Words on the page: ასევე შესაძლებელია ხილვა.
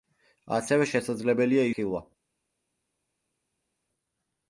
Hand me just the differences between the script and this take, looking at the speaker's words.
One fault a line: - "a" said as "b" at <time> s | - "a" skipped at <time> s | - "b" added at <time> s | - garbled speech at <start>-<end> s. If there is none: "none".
none